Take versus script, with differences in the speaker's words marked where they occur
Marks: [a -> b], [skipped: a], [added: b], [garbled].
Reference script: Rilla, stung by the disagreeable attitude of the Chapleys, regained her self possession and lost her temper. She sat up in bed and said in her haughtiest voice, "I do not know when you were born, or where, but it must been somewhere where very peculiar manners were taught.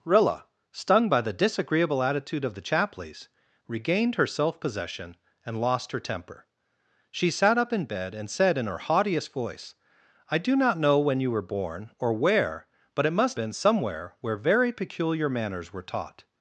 Rilla, stung by the disagreeable attitude of the Chapleys, regained her self possession and lost her temper. She sat up in bed and said in her haughtiest voice, "I do not know when you were born, or where, but it must been somewhere where very peculiar manners were taught.